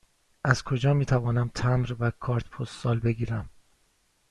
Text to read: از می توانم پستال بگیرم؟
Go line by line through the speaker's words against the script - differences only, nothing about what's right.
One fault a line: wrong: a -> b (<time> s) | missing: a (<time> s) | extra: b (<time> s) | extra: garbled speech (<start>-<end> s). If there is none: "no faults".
extra: کجا (0.6 s)
extra: تمبر و کارت (1.5 s)